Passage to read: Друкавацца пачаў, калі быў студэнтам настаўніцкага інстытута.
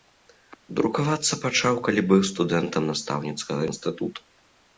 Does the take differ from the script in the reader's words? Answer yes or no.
no